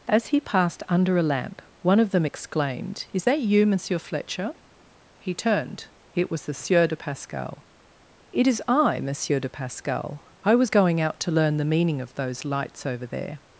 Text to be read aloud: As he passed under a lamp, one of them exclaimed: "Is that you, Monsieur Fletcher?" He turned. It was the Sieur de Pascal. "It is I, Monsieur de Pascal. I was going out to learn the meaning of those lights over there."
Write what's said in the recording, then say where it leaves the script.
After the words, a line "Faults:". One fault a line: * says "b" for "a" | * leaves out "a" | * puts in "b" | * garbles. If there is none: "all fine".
As he passed under a lamp, one of them exclaimed: "Is that you, Monsieur Fletcher?" He turned. It was the Sieur de Pascal. "It is I, Monsieur de Pascal. I was going out to learn the meaning of those lights over there."
Faults:
all fine